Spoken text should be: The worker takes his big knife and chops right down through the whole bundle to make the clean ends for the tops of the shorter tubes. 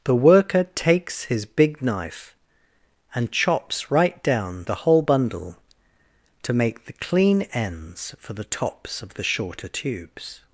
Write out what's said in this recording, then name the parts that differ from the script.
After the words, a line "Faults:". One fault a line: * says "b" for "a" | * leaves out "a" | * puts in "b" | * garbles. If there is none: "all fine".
The worker takes his big knife and chops right down the whole bundle to make the clean ends for the tops of the shorter tubes.
Faults:
* leaves out "through"